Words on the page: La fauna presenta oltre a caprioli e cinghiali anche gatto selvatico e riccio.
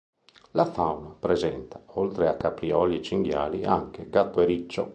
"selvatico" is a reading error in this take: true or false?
true